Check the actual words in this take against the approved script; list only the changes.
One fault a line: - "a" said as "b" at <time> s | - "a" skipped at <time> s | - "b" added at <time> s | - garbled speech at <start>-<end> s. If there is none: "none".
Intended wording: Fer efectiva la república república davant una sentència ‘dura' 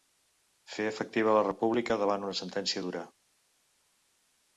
- "república" skipped at 2.0 s